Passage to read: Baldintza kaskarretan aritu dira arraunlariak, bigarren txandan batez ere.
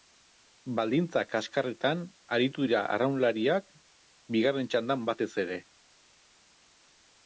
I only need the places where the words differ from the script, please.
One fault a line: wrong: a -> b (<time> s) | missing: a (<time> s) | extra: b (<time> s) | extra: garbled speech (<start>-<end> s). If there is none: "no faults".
no faults